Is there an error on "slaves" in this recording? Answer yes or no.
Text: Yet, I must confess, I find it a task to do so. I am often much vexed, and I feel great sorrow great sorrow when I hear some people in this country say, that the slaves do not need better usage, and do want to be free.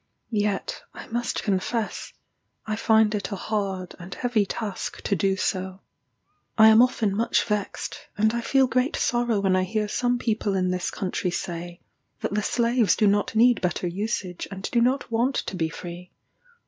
no